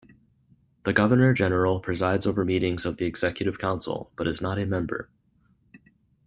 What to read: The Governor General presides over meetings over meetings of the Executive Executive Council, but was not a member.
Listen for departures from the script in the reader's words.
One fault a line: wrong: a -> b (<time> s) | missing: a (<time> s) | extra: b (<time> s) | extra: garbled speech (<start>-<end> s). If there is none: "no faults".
missing: over meetings (2.8 s)
missing: Executive (3.6 s)
wrong: was -> is (4.3 s)